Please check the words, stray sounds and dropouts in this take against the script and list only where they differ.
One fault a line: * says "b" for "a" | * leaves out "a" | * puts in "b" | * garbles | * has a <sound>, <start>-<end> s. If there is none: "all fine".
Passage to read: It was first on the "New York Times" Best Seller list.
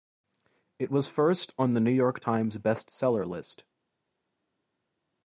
all fine